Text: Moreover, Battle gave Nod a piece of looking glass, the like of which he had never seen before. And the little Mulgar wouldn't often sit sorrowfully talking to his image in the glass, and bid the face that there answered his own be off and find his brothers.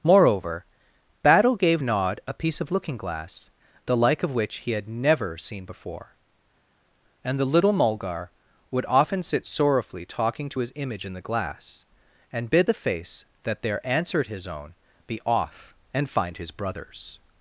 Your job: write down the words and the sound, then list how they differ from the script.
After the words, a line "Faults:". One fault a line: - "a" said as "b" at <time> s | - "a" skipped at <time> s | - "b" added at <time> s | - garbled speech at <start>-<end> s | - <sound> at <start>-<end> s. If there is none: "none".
Moreover, Battle gave Nod a piece of looking glass, the like of which he had never seen before. And the little Mulgar would often sit sorrowfully talking to his image in the glass, and bid the face that there answered his own be off and find his brothers.
Faults:
- "wouldn't" said as "would" at 8.7 s